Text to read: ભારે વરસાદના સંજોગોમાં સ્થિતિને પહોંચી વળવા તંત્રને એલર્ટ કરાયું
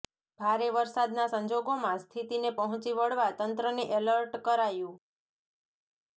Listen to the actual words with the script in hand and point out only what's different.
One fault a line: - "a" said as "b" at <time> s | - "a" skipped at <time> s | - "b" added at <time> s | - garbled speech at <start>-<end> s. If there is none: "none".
none